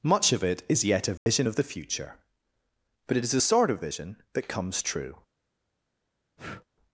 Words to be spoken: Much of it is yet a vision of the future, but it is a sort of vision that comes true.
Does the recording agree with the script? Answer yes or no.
yes